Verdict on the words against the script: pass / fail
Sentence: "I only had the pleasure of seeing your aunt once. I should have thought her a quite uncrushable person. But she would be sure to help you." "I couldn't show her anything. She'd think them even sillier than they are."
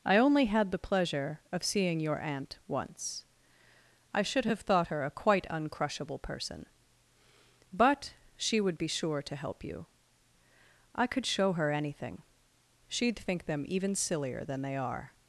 fail